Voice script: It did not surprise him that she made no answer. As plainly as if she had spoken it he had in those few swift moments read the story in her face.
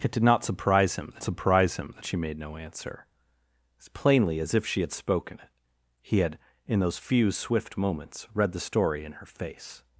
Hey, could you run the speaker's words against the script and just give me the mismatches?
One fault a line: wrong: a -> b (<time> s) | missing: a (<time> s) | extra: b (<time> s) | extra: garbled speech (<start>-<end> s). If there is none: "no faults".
extra: surprise him that (1.2 s)